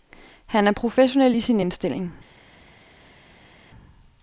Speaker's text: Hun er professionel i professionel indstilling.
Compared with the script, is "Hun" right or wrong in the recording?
wrong